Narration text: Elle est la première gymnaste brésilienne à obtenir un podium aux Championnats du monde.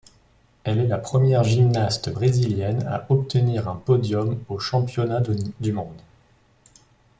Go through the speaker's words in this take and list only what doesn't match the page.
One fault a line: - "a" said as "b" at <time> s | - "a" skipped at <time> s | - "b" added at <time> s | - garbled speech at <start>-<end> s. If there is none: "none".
none